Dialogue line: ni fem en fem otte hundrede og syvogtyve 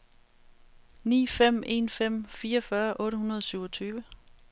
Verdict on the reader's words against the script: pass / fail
fail